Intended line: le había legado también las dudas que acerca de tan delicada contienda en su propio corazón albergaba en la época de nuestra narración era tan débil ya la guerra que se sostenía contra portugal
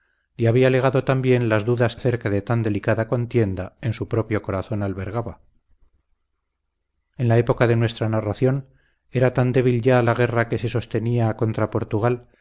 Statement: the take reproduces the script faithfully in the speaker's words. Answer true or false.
false